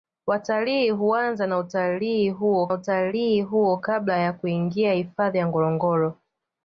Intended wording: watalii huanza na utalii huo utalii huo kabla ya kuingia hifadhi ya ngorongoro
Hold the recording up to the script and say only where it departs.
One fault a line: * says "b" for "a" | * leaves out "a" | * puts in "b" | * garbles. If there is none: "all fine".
all fine